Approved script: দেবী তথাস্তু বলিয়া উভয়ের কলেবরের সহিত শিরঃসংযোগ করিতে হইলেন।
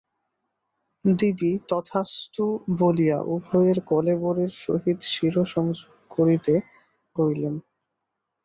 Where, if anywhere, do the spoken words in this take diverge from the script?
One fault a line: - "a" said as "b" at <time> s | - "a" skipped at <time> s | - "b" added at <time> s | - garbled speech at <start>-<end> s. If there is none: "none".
none